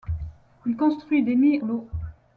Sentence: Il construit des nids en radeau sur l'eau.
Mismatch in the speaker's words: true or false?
true